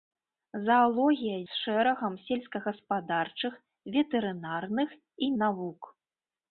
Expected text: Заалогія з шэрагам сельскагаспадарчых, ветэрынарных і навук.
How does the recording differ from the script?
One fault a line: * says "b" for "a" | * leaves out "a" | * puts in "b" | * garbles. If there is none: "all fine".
all fine